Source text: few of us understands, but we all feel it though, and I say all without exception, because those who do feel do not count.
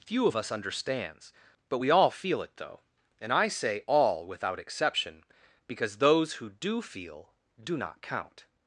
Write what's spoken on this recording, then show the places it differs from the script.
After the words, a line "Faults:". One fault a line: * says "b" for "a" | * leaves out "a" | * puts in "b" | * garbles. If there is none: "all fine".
few of us understands, but we all feel it though, and I say all without exception, because those who do feel do not count.
Faults:
all fine